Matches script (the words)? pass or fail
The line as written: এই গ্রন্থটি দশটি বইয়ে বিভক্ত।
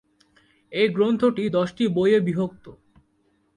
pass